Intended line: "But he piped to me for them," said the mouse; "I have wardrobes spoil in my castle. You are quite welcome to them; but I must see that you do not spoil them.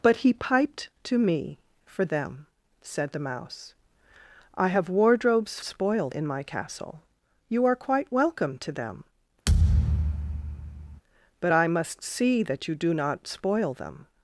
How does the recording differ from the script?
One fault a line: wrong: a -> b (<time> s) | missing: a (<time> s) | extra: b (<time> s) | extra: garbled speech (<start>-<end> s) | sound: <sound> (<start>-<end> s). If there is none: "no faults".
sound: thud (9.5-11.0 s)